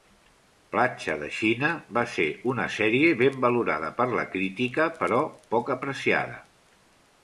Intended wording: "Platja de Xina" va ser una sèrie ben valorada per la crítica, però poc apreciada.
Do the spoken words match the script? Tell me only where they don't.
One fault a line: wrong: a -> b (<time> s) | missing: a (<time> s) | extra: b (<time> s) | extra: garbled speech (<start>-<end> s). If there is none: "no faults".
no faults